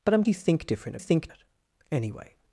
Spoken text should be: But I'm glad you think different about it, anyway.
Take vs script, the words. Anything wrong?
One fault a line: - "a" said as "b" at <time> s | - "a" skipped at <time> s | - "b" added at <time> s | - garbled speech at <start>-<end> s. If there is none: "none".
- "glad" skipped at 0.2 s
- "about" said as "think" at 1.0 s